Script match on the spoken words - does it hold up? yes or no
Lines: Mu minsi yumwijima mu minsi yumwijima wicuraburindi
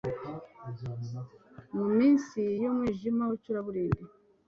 no